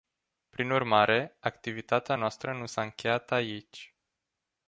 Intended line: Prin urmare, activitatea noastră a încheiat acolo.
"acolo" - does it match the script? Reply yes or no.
no